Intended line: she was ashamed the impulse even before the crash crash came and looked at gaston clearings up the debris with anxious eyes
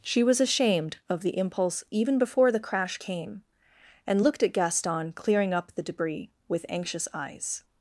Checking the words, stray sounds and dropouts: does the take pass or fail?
fail